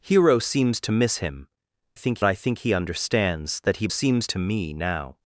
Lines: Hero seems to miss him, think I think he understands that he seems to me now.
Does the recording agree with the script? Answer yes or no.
yes